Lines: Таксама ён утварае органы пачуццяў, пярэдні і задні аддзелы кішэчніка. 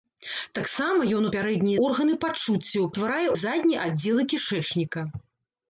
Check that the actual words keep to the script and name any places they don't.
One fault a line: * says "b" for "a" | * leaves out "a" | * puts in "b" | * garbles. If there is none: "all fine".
* says "пярэдні" for "утварае"
* says "утварае" for "пярэдні"